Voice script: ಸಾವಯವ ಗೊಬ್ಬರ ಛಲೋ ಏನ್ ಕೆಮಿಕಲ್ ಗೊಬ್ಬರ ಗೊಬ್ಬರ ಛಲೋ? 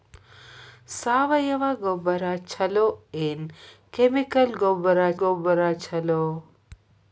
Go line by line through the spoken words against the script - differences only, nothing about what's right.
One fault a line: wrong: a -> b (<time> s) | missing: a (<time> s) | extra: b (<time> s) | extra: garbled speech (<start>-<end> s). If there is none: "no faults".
no faults